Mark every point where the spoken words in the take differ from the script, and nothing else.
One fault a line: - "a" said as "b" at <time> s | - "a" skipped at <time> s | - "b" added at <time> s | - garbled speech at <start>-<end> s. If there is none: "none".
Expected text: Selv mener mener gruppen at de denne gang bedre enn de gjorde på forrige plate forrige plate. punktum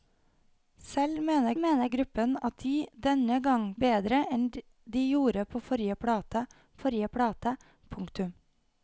none